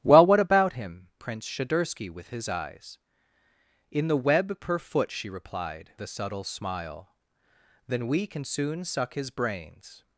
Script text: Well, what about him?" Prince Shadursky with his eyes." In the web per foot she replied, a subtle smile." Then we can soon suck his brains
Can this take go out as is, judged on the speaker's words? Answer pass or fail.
pass